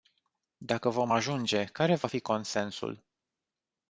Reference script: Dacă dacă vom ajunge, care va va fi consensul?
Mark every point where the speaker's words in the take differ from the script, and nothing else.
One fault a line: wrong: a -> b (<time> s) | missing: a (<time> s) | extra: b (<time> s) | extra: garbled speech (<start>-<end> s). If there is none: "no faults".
missing: dacă (0.9 s)
missing: va (2.1 s)